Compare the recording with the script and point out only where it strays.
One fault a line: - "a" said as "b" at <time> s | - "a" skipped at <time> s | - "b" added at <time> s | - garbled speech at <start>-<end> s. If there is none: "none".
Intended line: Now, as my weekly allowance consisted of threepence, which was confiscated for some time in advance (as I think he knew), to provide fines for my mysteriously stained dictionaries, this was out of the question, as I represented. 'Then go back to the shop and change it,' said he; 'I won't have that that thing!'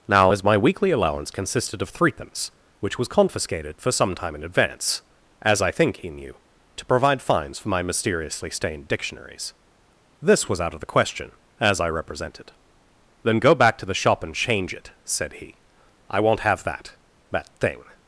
none